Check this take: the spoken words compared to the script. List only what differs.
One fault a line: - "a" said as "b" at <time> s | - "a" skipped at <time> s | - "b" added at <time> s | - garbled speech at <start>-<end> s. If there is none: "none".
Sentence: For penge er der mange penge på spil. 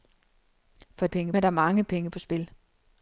none